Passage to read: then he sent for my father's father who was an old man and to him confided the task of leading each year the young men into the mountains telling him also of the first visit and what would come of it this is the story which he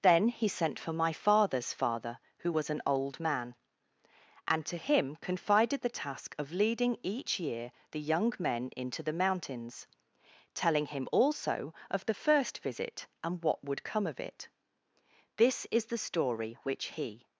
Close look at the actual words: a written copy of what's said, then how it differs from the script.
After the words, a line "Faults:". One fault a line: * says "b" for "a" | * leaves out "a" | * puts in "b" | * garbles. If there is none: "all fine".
then he sent for my father's father who was an old man and to him confided the task of leading each year the young men into the mountains telling him also of the first visit and what would come of it this is the story which he
Faults:
all fine